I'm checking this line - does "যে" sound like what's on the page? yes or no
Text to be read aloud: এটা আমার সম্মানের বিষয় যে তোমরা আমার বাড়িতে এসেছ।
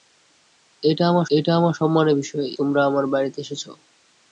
no